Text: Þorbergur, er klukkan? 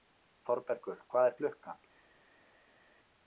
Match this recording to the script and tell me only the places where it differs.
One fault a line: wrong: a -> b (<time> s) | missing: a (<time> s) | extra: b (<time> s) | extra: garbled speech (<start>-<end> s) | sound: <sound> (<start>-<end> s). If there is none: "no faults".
extra: hvað (1.1 s)